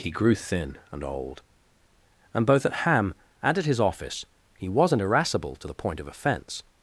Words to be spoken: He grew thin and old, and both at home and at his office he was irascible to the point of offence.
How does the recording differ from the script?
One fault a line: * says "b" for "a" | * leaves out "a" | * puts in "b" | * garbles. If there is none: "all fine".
* says "ham" for "home"
* says "wasn't" for "was"